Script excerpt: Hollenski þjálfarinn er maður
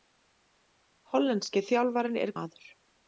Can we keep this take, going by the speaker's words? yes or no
yes